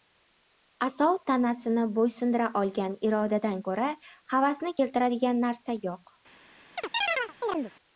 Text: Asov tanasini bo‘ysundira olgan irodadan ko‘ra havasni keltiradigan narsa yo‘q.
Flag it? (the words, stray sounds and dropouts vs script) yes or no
yes